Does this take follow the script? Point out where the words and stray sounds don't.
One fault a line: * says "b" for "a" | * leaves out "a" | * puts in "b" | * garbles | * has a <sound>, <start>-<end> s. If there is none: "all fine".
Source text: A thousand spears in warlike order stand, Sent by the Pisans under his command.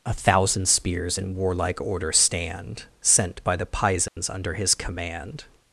* has a dropout, 4.1-4.2 s